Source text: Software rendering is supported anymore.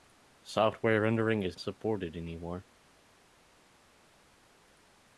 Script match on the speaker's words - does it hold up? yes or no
yes